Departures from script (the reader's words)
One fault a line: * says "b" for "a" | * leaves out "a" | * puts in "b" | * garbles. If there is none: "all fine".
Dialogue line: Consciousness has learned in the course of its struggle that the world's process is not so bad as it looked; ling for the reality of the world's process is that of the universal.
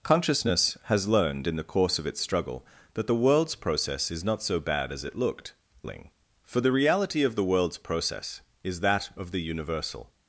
all fine